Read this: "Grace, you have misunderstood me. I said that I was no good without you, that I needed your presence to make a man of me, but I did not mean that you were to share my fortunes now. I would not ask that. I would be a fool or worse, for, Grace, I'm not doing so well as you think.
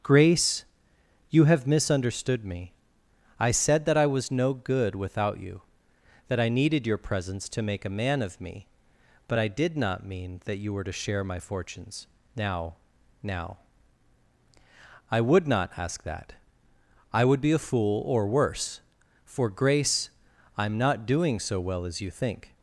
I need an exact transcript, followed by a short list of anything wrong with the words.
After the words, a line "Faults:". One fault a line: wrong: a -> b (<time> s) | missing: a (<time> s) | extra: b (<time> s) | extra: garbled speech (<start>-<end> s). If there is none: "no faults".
"Grace, you have misunderstood me. I said that I was no good without you, that I needed your presence to make a man of me, but I did not mean that you were to share my fortunes now now. I would not ask that. I would be a fool or worse, for, Grace, I'm not doing so well as you think.
Faults:
extra: now (13.2 s)